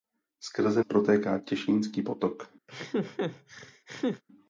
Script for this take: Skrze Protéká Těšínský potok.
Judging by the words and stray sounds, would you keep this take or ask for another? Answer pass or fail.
fail